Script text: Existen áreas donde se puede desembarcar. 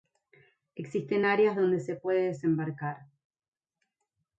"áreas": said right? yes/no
yes